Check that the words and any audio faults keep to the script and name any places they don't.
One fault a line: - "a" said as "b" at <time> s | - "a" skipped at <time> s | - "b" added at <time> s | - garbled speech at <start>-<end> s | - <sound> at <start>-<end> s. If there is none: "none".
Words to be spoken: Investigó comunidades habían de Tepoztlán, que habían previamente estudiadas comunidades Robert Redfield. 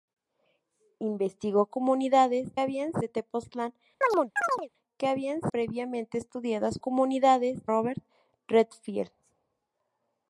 - chirp at 4.0-4.7 s